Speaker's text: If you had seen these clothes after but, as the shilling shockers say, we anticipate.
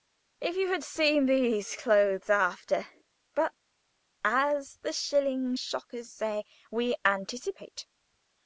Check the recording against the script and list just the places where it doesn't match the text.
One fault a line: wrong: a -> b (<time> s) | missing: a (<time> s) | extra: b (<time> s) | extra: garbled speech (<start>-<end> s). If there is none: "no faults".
no faults